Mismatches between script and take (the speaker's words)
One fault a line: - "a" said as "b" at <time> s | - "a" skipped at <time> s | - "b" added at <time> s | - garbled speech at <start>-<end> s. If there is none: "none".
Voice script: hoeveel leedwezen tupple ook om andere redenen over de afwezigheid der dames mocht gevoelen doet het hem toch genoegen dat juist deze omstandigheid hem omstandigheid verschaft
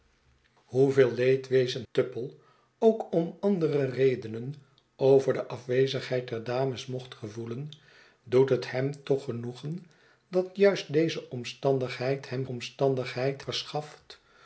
none